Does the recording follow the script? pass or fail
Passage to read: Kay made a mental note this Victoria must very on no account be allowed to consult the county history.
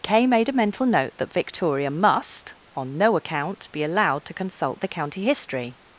fail